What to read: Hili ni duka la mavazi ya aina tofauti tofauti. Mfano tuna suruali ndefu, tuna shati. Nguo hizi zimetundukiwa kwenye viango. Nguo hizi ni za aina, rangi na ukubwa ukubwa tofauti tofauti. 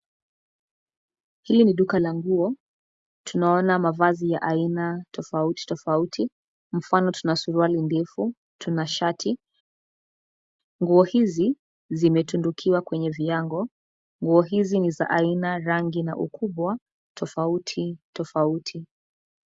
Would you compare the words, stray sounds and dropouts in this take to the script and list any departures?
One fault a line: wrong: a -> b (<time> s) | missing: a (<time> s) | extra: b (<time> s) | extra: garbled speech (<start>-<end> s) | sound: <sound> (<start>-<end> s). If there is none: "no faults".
extra: nguo tunaona (2.1 s)
missing: ukubwa (16.8 s)